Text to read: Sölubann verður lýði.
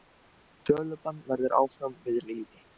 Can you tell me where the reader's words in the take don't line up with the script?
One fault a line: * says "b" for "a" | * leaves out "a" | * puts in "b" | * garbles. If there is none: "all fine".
* puts in "áfram við"